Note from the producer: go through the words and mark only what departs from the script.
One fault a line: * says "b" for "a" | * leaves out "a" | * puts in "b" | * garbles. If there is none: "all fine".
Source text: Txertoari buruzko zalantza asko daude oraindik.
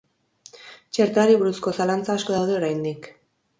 all fine